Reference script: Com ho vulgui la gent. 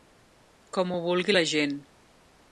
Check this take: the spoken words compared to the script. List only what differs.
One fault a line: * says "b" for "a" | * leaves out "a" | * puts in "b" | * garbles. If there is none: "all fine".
all fine